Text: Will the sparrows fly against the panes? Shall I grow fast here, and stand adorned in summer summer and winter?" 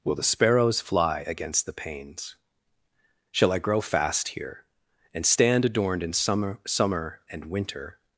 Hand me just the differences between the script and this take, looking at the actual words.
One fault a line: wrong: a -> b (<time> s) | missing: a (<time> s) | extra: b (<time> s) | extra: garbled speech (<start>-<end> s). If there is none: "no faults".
no faults